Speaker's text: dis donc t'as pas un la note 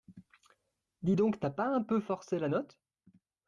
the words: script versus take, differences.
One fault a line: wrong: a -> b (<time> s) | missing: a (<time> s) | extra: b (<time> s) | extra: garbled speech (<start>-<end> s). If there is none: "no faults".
extra: peu forcé (1.8 s)